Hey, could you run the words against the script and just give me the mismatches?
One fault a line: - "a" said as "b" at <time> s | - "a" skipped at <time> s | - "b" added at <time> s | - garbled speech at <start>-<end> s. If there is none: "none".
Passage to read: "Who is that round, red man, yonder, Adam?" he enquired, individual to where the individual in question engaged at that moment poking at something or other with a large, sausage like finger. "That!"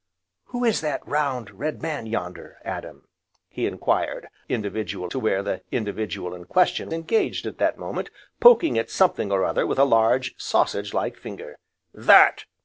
none